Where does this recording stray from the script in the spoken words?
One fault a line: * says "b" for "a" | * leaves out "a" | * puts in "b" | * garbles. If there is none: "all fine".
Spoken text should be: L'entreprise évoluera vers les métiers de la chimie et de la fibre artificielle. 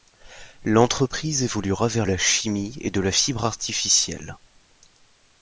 * leaves out "les métiers de"